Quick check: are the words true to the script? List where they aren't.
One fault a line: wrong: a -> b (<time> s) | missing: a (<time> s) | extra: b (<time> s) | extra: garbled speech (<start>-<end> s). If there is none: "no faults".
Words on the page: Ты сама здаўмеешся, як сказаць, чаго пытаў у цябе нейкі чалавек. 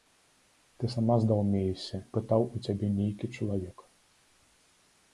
missing: як сказаць чаго (2.0 s)